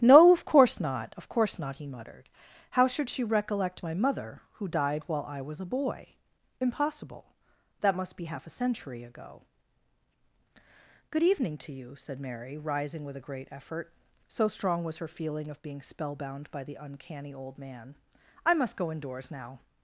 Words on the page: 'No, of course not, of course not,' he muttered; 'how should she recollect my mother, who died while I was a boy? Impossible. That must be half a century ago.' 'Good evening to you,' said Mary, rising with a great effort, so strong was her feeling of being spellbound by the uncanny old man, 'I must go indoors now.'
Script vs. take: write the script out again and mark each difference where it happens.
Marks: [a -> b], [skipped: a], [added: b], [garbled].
'No, of course not, of course not,' he muttered; 'how should she recollect my mother, who died while I was a boy? Impossible. That must be half a century ago.' 'Good evening to you,' said Mary, rising with a great effort, so strong was her feeling of being spellbound by the uncanny old man, 'I must go indoors now.'